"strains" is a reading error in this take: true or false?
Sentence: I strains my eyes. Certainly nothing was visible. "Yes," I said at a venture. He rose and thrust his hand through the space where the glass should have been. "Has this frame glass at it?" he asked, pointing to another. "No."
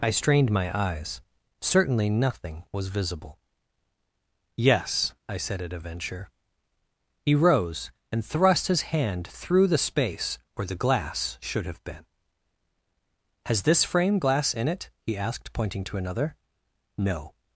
true